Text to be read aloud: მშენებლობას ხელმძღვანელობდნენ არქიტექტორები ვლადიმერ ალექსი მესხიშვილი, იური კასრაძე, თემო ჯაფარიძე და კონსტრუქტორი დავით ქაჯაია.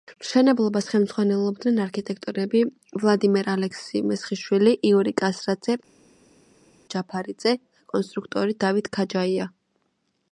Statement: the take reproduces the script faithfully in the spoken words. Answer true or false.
false